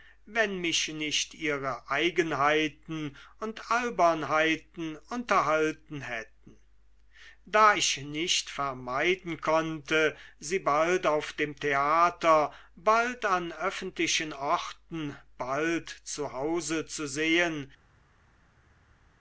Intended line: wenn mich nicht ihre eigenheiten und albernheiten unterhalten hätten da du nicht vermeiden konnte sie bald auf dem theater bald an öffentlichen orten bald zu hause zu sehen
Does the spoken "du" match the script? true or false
false